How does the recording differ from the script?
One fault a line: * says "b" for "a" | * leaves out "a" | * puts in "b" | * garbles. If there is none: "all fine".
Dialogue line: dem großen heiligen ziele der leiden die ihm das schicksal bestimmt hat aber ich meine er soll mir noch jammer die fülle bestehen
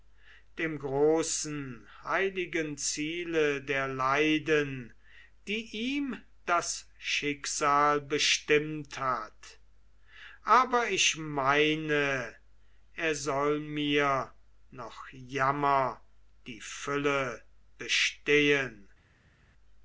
all fine